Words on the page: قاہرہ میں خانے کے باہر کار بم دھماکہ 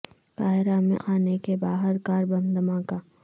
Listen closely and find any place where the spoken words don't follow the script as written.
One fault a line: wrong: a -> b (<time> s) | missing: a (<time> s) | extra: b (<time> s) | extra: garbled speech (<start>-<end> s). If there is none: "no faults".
no faults